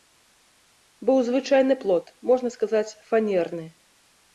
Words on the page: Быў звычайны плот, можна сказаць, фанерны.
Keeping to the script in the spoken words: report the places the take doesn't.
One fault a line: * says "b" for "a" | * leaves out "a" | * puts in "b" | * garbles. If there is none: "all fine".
all fine